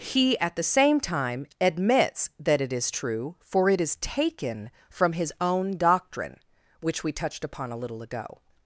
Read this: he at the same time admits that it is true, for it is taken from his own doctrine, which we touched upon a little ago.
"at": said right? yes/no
yes